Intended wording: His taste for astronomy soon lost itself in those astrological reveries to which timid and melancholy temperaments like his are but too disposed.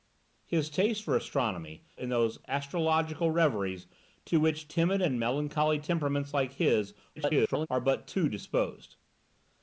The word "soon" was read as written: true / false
false